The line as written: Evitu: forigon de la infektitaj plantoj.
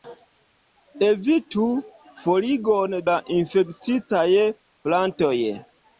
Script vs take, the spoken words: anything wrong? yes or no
yes